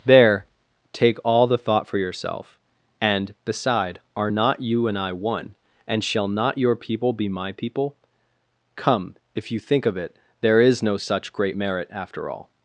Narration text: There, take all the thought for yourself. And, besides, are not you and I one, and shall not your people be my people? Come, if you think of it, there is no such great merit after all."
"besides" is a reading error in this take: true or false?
true